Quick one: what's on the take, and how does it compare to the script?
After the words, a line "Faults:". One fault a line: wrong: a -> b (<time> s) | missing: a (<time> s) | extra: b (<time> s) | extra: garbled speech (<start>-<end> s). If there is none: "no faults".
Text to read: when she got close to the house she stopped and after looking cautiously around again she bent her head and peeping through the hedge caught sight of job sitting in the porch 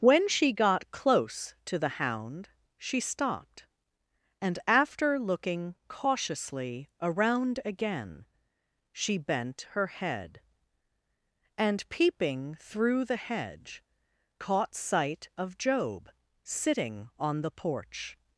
when she got close to the hound she stopped and after looking cautiously around again she bent her head and peeping through the hedge caught sight of job sitting on the porch
Faults:
wrong: house -> hound (2.0 s)
wrong: in -> on (17.2 s)